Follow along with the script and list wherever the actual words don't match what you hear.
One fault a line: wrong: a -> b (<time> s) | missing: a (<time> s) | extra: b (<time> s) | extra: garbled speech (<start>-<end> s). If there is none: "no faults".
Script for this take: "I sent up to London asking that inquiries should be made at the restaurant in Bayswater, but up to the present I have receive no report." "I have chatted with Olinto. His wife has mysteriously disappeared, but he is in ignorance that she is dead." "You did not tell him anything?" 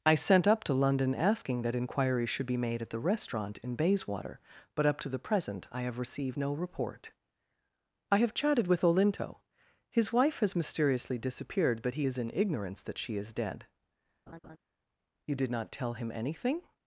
wrong: receive -> received (6.0 s)